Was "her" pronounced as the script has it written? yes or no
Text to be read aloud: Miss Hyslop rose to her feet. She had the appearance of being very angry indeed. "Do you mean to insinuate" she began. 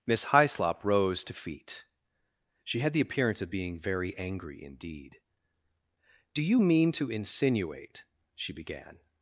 no